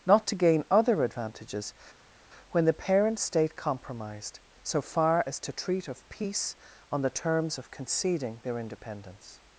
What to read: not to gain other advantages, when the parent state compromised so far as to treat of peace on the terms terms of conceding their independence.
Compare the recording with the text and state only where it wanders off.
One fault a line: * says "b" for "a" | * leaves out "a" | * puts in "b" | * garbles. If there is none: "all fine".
* leaves out "terms"